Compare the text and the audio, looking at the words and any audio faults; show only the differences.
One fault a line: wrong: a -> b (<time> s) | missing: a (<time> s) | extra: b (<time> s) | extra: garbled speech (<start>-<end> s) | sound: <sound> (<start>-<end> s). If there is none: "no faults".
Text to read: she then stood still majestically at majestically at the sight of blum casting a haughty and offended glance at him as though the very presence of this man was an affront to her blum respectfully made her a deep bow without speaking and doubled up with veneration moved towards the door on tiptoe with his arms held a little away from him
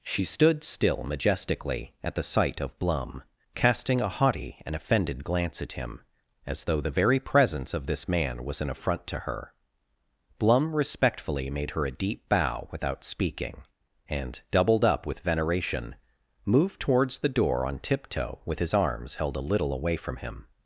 missing: then (0.2 s)
missing: majestically at (2.1 s)